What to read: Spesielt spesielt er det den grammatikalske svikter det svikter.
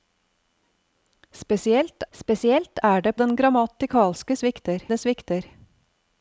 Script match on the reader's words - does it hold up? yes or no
yes